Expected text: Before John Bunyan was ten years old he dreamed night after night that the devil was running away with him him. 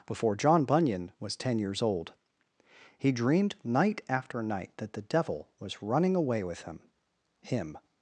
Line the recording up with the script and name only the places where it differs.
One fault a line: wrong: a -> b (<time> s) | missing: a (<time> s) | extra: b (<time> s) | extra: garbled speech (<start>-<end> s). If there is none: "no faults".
no faults